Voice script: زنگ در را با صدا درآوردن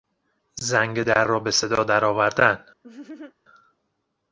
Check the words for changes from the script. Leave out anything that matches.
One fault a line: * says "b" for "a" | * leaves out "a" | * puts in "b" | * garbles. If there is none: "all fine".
* says "به" for "با"